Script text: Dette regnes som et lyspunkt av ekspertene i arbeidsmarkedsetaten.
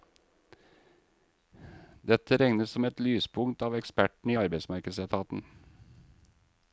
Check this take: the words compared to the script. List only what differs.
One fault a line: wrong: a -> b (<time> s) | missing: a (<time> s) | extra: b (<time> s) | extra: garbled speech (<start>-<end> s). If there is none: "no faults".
no faults